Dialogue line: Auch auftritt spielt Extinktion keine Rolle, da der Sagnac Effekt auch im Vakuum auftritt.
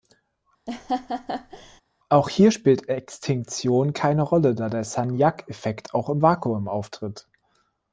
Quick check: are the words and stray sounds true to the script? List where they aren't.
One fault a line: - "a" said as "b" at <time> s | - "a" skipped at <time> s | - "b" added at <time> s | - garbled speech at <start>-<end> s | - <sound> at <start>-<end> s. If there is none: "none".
- laugh at 0.7-1.8 s
- "auftritt" said as "hier" at 2.3 s